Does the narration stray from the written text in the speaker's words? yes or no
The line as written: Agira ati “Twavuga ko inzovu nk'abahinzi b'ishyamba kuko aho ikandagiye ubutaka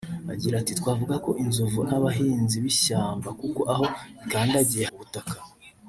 no